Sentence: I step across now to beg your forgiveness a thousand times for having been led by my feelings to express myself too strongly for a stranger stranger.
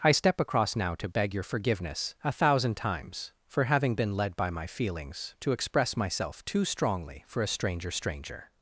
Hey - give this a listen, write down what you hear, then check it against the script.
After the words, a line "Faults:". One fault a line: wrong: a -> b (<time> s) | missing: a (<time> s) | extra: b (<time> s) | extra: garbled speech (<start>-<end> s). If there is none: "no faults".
I step across now to beg your forgiveness a thousand times for having been led by my feelings to express myself too strongly for a stranger stranger.
Faults:
no faults